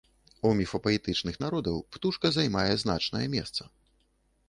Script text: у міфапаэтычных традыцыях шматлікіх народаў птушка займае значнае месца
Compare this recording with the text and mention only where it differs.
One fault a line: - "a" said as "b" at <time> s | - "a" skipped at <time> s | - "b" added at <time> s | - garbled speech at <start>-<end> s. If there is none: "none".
- "традыцыях шматлікіх" skipped at 1.4 s